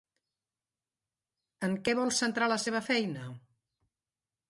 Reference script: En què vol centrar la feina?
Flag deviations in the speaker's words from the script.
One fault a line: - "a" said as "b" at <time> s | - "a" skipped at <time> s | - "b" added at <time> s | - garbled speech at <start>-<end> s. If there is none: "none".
- "seva" added at 2.6 s